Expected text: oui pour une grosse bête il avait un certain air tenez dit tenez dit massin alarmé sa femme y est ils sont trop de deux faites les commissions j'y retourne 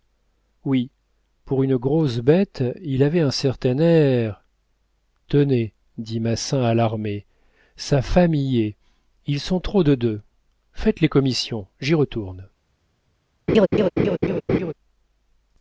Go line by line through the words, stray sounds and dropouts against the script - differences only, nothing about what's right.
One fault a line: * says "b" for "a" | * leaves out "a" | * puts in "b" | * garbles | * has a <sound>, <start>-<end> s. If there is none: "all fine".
* leaves out "tenez dit"
* has a laugh, 13.5-14.7 s